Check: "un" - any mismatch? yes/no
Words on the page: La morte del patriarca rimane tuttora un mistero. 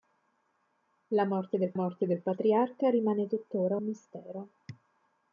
yes